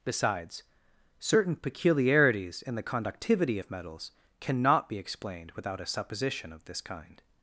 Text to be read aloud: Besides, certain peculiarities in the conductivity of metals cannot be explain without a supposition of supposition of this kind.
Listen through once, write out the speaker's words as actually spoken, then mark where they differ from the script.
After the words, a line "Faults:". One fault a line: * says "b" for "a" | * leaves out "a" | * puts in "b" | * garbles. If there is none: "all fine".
Besides, certain peculiarities in the conductivity of metals cannot be explained without a supposition of this kind.
Faults:
* says "explained" for "explain"
* leaves out "supposition of"